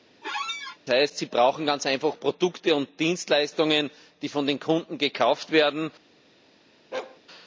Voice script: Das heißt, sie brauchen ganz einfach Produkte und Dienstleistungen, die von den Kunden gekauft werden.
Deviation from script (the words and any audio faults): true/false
true